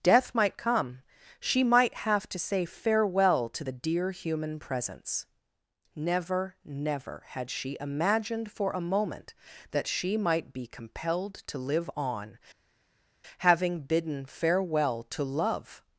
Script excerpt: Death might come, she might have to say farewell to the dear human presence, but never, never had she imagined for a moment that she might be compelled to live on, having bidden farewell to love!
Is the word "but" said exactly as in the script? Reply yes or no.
no